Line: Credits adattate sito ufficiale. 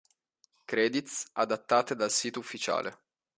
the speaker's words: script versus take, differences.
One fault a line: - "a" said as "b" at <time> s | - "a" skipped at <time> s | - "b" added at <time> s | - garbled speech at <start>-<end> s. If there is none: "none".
- "dal" added at 2.0 s